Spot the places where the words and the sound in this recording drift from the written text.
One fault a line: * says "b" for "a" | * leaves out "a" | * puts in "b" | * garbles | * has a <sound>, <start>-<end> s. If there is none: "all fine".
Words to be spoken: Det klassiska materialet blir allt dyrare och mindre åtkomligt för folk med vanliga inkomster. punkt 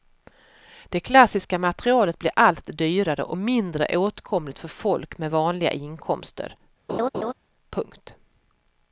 * has a laugh, 6.9-7.3 s